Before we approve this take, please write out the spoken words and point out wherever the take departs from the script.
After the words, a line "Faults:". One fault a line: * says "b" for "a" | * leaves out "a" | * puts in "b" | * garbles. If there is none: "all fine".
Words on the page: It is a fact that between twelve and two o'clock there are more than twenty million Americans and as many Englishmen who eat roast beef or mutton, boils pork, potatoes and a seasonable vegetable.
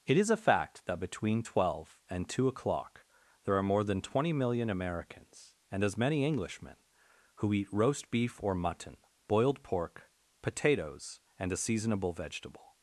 It is a fact that between twelve and two o'clock there are more than twenty million Americans and as many Englishmen who eat roast beef or mutton, boiled pork, potatoes and a seasonable vegetable.
Faults:
* says "boiled" for "boils"